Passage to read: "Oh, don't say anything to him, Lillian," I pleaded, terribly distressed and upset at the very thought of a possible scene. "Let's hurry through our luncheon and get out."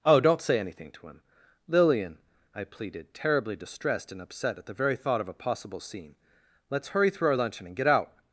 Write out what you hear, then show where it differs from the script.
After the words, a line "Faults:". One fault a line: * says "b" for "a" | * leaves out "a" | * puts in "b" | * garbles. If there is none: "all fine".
"Oh, don't say anything to him, Lillian," I pleaded, terribly distressed and upset at the very thought of a possible scene. "Let's hurry through our luncheon and get out."
Faults:
all fine